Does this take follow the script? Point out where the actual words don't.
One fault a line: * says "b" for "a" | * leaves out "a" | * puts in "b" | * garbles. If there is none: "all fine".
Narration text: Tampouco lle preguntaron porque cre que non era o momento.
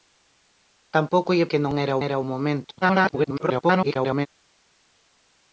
* leaves out "preguntaron porque cre"
* puts in "era"
* garbles